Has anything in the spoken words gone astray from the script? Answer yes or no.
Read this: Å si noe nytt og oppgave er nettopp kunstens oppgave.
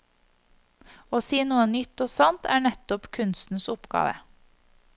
yes